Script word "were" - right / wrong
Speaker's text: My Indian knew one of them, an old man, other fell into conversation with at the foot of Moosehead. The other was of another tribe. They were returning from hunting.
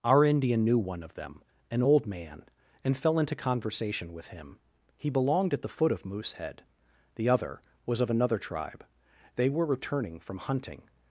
right